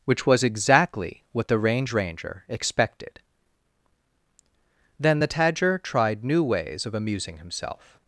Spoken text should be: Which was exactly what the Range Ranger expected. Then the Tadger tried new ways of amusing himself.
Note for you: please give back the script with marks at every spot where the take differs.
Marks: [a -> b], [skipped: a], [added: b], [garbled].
Which was exactly what the Range Ranger expected. Then the Tadger tried new ways of amusing himself.